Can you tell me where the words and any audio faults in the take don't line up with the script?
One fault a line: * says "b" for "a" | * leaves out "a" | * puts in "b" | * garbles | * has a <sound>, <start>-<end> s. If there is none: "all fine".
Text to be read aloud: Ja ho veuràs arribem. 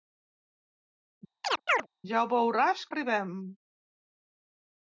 * has a chirp, 1.4-1.9 s